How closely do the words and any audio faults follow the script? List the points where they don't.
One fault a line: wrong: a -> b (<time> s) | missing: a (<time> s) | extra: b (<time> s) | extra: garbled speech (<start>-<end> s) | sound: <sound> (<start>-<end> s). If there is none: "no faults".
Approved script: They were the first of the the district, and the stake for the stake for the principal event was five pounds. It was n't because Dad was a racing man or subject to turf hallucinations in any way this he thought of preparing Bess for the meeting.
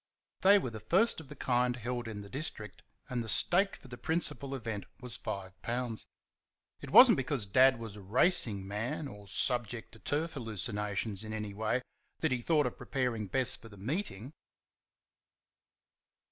wrong: the district and -> kind held in (1.4 s)
wrong: stake for -> district and (2.3 s)
wrong: this -> that (12.2 s)